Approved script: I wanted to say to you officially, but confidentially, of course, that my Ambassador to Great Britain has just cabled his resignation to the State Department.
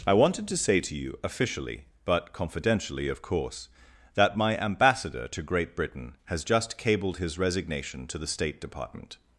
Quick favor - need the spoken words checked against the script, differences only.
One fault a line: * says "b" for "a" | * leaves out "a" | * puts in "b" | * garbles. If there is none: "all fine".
all fine